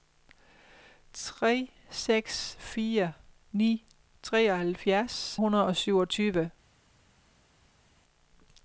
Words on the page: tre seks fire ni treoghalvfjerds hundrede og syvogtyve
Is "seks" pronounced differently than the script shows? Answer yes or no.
no